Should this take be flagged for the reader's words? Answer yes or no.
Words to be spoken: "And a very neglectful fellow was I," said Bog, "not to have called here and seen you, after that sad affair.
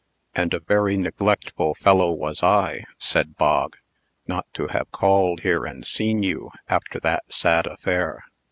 no